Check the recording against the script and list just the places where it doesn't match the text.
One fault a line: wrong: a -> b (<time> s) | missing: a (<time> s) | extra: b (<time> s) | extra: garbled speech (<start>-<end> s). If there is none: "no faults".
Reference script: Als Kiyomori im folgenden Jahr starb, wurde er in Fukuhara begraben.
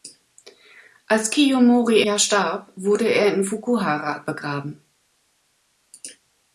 missing: im folgenden (2.0 s)